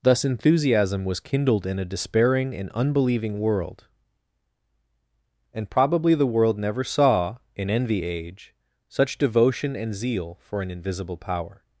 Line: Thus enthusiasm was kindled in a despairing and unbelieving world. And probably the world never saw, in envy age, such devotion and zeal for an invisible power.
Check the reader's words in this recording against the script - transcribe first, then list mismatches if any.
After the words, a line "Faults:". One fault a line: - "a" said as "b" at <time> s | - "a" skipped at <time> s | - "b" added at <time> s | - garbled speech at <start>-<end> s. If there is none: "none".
Thus enthusiasm was kindled in a despairing and unbelieving world. And probably the world never saw, in envy age, such devotion and zeal for an invisible power.
Faults:
none